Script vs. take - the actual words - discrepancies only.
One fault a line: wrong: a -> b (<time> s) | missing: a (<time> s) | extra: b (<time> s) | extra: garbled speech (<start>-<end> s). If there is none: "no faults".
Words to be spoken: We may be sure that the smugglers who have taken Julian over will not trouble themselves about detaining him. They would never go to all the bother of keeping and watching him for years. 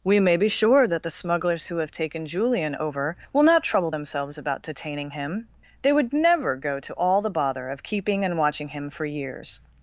no faults